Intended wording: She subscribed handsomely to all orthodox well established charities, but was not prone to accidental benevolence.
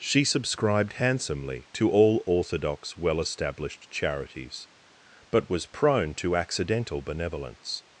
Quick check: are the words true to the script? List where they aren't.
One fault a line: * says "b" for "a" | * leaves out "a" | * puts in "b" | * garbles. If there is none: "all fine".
* leaves out "not"